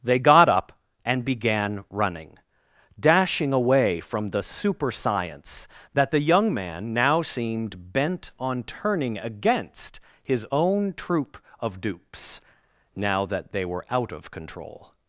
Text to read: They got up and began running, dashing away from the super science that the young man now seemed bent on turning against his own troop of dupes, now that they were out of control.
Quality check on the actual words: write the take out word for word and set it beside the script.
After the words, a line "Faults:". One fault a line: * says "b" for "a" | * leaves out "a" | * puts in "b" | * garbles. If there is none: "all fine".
They got up and began running, dashing away from the super science that the young man now seemed bent on turning against his own troop of dupes, now that they were out of control.
Faults:
all fine